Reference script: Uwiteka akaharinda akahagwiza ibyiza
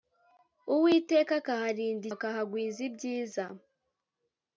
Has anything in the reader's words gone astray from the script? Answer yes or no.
no